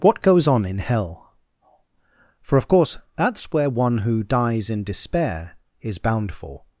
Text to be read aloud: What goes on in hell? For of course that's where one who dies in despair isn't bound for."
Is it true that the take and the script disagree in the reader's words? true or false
true